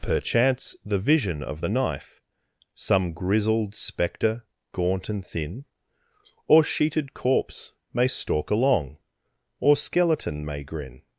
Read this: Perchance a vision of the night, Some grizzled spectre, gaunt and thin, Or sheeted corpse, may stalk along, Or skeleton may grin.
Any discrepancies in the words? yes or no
yes